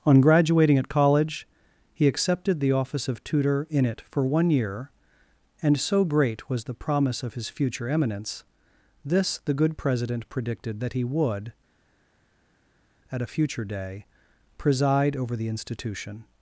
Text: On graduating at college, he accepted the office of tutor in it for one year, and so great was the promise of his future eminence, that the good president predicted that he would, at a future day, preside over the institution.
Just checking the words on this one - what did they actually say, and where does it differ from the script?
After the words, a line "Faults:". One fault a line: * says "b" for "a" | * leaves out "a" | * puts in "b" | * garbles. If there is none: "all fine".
On graduating at college, he accepted the office of tutor in it for one year, and so great was the promise of his future eminence, this the good president predicted that he would, at a future day, preside over the institution.
Faults:
* says "this" for "that"